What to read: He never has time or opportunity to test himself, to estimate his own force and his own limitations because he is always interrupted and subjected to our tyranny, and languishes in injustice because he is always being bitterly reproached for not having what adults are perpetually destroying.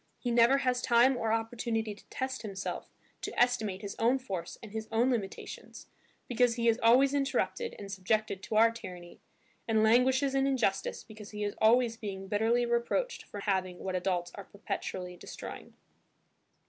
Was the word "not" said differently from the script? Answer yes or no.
yes